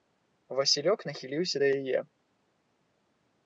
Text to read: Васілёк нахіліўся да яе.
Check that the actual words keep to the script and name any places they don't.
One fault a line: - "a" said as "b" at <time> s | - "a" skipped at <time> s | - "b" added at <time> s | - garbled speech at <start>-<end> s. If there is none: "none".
none